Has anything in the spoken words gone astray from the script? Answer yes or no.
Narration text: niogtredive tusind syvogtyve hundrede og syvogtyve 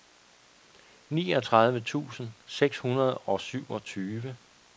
yes